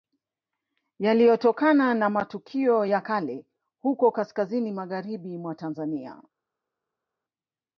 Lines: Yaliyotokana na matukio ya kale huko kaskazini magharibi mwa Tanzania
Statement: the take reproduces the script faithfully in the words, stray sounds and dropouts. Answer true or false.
true